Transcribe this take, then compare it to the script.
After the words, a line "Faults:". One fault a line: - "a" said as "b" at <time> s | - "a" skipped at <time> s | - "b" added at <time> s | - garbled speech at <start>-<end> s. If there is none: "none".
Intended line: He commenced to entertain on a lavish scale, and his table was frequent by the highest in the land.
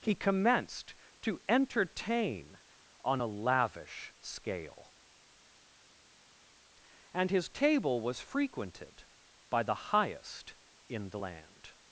He commenced to entertain on a lavish scale, and his table was frequented by the highest in the land.
Faults:
- "frequent" said as "frequented" at 8.2 s